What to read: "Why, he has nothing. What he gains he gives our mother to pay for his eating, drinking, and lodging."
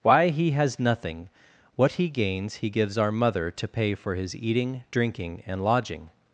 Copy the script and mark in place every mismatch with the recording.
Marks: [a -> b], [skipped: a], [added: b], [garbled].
"Why, he has nothing. What he gains he gives our mother to pay for his eating, drinking, and lodging."